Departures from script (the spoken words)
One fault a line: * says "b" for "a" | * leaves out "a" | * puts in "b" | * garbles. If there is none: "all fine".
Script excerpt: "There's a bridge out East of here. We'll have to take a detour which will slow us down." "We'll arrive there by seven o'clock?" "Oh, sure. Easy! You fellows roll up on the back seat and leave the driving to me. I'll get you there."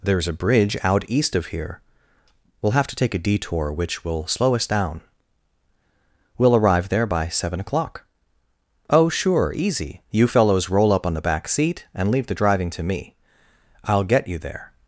all fine